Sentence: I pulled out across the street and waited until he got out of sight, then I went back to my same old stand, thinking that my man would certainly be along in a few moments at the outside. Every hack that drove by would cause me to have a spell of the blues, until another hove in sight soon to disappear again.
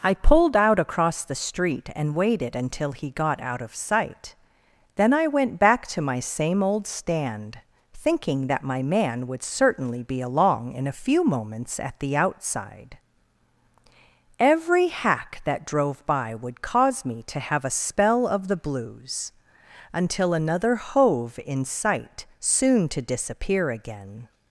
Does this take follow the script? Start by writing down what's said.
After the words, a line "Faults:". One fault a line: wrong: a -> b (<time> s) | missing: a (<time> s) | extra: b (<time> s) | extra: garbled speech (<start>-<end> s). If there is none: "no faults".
I pulled out across the street and waited until he got out of sight, then I went back to my same old stand, thinking that my man would certainly be along in a few moments at the outside. Every hack that drove by would cause me to have a spell of the blues, until another hove in sight soon to disappear again.
Faults:
no faults